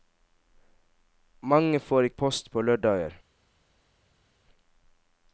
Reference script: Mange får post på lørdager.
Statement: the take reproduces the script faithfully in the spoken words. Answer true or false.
true